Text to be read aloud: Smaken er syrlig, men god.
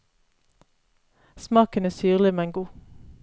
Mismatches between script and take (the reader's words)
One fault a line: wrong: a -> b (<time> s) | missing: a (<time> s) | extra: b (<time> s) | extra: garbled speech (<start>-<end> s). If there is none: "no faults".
no faults